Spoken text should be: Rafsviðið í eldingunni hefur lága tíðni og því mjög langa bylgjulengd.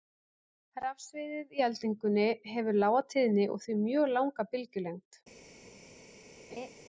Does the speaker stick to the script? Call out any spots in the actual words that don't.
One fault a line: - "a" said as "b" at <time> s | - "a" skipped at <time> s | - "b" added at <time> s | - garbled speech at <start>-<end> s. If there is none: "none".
none